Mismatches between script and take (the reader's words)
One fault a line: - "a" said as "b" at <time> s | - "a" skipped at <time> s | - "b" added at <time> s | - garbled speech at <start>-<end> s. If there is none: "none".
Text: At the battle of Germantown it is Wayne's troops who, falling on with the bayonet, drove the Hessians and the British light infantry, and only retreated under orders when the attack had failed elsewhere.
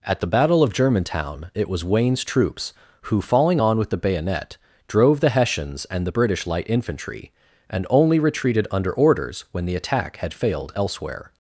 - "is" said as "was" at 1.7 s